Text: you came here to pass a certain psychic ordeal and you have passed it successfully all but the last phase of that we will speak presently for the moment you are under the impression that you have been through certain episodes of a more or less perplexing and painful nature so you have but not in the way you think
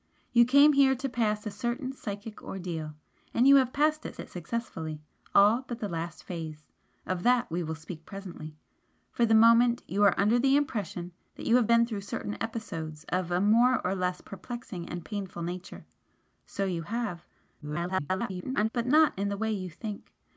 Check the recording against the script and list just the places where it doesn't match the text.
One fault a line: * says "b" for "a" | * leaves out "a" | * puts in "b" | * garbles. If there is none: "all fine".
* puts in "it"
* garbles